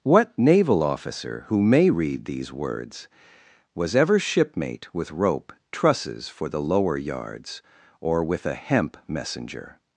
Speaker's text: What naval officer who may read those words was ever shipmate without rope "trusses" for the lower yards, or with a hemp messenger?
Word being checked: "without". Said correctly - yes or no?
no